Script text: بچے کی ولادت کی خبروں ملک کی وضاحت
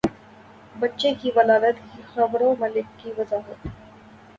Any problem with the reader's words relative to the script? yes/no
no